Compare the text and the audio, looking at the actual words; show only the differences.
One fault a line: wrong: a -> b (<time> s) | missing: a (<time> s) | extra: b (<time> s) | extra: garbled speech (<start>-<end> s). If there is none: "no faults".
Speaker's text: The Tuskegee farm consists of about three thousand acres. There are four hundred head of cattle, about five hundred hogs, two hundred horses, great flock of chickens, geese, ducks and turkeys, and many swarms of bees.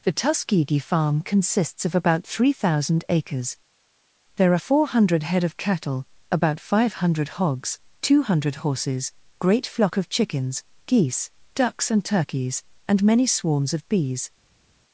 no faults